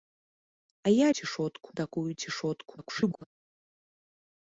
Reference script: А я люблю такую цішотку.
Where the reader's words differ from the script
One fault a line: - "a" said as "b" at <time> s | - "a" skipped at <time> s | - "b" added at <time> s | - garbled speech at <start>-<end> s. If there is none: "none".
- "люблю" said as "цішотку" at 1.2 s
- garbled speech at 2.8-3.2 s